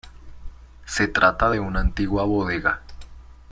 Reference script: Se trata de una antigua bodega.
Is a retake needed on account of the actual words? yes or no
no